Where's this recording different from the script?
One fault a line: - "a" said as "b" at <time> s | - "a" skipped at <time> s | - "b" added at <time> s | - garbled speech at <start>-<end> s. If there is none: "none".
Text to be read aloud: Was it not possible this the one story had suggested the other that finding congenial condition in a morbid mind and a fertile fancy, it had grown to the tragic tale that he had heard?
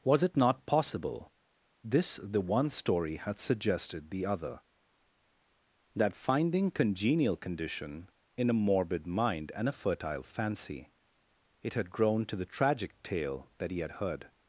none